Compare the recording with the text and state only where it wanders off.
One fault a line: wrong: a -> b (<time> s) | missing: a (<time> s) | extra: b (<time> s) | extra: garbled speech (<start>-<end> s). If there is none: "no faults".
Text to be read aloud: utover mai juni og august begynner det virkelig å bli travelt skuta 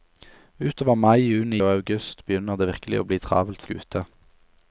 no faults